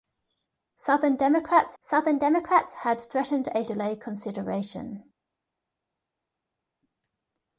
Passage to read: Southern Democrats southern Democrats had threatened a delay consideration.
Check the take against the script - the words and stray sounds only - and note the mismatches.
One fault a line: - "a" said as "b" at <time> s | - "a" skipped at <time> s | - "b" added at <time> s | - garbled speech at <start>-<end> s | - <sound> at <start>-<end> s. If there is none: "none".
none